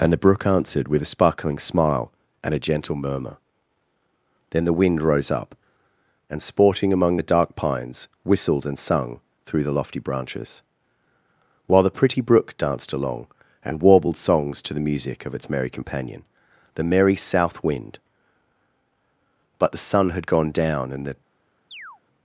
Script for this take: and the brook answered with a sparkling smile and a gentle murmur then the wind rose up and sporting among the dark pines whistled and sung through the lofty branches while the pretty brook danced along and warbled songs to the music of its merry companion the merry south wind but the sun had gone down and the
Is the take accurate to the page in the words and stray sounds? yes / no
no